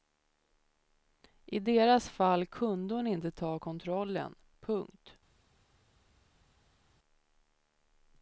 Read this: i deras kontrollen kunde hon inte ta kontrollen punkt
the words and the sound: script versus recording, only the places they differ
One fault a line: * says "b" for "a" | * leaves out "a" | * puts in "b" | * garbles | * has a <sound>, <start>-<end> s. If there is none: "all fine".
* says "fall" for "kontrollen"